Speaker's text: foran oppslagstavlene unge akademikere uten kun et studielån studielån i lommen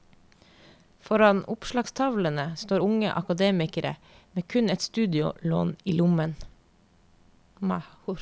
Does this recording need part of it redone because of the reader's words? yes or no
yes